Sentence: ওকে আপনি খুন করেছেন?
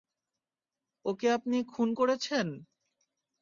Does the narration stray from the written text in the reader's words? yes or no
no